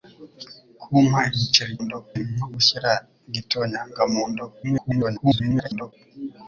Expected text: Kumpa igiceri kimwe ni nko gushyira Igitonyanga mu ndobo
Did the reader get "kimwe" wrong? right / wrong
wrong